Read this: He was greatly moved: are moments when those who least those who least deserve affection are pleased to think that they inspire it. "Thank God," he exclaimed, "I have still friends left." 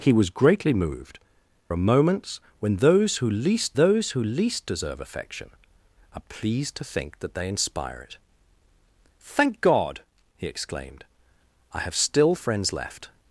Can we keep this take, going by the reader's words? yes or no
yes